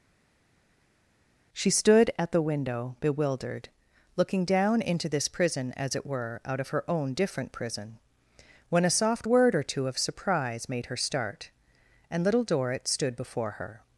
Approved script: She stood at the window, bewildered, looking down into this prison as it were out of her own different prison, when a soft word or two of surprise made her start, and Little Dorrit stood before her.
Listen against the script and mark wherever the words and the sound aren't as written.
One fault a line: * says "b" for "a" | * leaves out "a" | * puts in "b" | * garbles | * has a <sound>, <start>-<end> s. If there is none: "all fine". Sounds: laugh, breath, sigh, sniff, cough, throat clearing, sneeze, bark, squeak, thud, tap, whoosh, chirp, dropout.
all fine